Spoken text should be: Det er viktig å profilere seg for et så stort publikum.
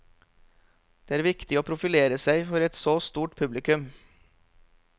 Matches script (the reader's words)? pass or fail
pass